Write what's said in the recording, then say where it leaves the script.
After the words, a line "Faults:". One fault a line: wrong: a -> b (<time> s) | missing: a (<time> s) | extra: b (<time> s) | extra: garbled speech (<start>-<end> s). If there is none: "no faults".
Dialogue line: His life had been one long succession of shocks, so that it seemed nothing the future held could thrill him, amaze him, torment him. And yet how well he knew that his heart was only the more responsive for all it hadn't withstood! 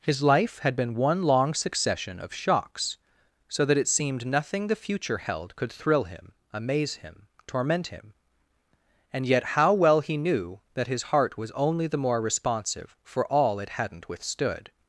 His life had been one long succession of shocks, so that it seemed nothing the future held could thrill him, amaze him, torment him. And yet how well he knew that his heart was only the more responsive for all it hadn't withstood!
Faults:
no faults